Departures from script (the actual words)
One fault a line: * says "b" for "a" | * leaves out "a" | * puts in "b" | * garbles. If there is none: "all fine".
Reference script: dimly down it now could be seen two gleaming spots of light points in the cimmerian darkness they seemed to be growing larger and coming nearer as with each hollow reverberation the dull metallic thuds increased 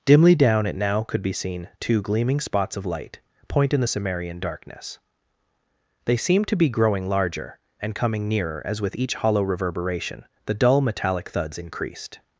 * says "point" for "points"